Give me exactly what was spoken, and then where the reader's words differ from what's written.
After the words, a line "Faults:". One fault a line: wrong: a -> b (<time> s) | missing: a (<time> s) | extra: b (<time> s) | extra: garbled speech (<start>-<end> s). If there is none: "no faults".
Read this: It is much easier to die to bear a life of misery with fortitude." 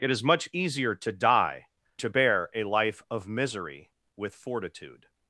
It is much easier to die to bear a life of misery with fortitude."
Faults:
no faults